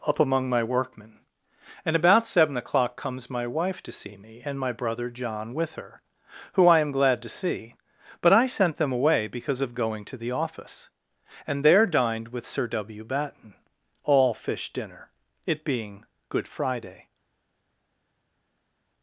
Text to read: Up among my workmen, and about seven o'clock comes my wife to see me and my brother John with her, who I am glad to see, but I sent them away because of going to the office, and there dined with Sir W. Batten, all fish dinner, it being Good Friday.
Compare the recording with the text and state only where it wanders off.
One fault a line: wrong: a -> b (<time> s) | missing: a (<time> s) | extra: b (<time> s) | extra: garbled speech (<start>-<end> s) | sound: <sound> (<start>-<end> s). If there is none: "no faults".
no faults